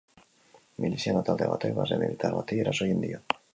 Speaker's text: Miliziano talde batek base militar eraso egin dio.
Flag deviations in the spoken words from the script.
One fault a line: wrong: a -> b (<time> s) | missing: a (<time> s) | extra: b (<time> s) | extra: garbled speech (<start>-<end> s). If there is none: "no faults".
extra: bati (2.4 s)